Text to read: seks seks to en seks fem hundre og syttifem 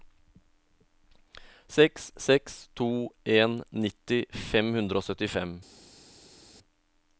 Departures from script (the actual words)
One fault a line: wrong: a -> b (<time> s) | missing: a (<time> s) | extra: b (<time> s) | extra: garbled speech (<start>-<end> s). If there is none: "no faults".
wrong: seks -> nitti (3.8 s)